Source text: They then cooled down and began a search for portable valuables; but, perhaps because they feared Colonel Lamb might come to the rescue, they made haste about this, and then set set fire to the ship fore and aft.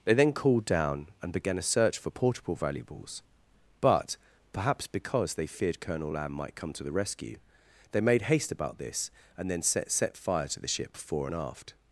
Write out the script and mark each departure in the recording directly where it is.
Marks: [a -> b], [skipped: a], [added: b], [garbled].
They then cooled down and began a search for portable valuables; but, perhaps because they feared Colonel Lamb might come to the rescue, they made haste about this, and then set set fire to the ship fore and aft.